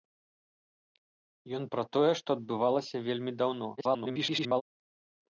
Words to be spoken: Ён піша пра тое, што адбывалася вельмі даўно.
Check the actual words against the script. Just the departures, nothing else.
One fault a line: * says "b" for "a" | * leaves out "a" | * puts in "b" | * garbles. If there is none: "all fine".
* leaves out "піша"
* garbles